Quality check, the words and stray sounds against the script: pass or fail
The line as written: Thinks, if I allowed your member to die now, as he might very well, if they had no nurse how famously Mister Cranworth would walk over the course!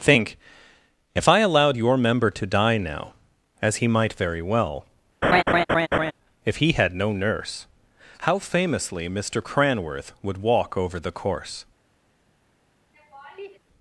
fail